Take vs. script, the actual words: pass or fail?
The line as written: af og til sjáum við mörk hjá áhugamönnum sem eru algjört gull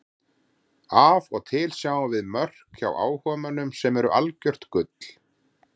pass